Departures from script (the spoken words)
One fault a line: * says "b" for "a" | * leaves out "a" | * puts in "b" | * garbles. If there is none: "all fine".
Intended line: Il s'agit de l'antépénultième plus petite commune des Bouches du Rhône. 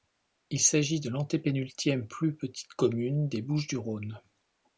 all fine